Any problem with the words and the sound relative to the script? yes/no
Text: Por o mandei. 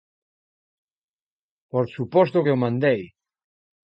yes